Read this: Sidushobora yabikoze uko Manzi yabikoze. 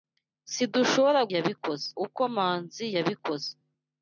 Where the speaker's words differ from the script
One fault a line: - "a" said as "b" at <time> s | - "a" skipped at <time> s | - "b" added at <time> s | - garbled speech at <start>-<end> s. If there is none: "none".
none